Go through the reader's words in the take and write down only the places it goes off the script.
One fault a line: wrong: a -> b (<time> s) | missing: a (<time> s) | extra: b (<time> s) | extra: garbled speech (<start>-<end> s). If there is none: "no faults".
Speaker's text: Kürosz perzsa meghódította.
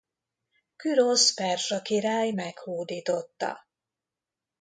extra: király (1.8 s)